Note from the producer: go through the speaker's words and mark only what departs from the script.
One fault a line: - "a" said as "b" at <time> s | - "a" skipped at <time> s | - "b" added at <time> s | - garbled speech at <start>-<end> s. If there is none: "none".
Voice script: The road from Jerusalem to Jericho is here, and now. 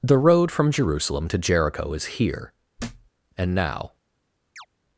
none